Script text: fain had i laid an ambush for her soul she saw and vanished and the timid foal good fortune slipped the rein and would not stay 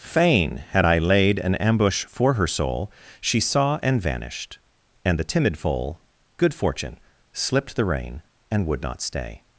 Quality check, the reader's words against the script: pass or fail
pass